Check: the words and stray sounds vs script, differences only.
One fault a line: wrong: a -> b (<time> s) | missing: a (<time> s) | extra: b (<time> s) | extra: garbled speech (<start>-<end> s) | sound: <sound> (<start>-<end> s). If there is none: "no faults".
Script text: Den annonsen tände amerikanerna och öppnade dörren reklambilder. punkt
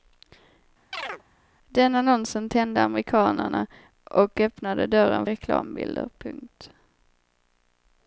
sound: chirp (0.9-1.2 s)